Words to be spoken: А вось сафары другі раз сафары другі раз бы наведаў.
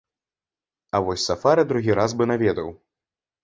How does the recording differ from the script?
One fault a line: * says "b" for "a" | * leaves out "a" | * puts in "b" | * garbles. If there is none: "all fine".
* leaves out "сафары другі раз"